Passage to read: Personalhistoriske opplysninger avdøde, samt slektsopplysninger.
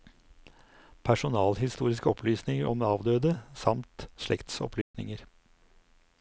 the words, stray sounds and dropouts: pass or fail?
fail